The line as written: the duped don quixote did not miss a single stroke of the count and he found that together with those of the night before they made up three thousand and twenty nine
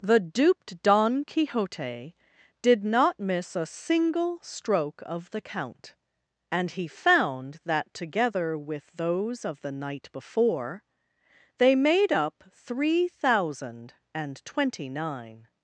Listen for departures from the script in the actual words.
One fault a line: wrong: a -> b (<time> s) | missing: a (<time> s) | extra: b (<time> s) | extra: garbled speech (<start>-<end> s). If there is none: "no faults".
no faults